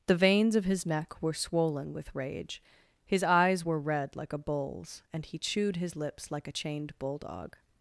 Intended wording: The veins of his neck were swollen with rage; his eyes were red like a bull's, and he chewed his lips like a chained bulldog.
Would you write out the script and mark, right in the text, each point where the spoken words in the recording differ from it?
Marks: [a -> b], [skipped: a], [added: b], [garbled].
The veins of his neck were swollen with rage; his eyes were red like a bull's, and he chewed his lips like a chained bulldog.